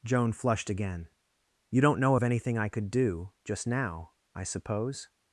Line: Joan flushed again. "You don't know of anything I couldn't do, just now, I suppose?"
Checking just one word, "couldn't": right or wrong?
wrong